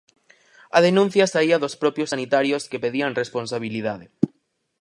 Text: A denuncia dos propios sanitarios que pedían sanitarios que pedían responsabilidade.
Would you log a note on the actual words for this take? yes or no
yes